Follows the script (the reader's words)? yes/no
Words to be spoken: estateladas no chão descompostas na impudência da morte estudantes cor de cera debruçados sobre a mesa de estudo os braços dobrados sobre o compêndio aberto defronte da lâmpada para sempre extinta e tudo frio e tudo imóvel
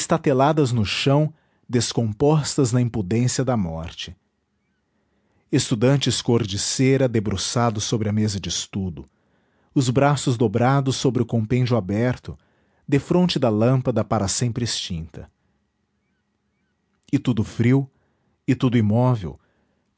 yes